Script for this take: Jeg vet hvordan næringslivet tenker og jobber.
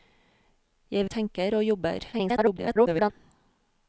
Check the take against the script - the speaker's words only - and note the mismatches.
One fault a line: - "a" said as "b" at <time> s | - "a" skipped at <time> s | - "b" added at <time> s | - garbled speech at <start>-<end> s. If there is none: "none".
- "vet hvordan næringslivet" skipped at 1.1 s
- garbled speech at 2.1-3.1 s